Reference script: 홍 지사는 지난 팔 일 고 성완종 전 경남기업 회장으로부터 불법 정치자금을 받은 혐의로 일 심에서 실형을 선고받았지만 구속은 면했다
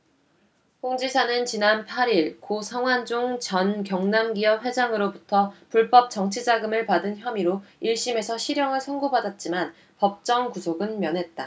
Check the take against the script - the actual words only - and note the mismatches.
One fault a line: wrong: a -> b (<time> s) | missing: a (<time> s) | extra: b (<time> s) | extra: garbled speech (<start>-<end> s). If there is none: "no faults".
extra: 법정 (10.0 s)